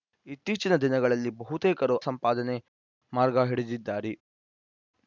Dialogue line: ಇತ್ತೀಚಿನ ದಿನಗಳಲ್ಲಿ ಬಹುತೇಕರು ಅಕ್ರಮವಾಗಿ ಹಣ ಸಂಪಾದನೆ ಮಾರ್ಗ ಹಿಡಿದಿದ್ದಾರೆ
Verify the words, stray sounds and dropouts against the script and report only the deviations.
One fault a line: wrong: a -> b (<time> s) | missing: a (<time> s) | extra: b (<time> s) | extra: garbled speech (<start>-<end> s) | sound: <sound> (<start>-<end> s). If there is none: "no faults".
missing: ಅಕ್ರಮವಾಗಿ ಹಣ (2.0 s)